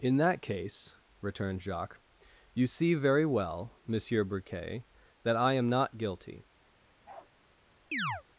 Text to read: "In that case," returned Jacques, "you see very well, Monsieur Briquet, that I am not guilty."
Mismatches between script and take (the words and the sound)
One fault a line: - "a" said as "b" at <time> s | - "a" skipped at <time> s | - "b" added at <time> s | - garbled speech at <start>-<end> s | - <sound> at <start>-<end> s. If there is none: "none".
- bark at 7.0-7.3 s
- chirp at 7.9-8.2 s